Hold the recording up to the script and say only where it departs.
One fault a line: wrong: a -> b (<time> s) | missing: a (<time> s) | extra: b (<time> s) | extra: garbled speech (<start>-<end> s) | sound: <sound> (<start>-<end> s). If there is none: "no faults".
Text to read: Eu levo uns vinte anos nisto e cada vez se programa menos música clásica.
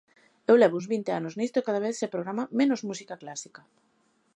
no faults